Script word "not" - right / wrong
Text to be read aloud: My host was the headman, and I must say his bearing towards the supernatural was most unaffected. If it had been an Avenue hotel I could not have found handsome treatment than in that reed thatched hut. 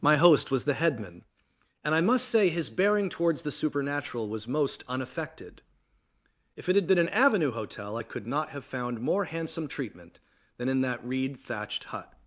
right